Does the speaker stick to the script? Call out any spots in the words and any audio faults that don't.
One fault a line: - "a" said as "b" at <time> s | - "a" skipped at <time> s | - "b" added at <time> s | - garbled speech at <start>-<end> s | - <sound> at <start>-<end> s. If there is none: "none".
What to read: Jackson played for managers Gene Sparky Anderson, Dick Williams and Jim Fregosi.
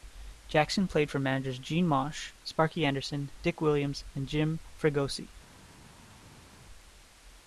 - "Mauch" added at 1.9 s